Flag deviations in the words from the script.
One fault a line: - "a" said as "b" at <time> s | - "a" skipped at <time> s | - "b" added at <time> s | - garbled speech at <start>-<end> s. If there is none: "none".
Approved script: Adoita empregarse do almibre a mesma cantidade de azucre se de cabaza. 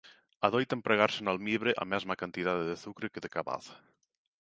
- "do" said as "no" at 1.2 s
- "se" said as "que" at 3.1 s